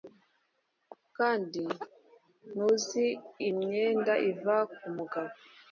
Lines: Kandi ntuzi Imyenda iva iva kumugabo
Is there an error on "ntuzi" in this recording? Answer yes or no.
no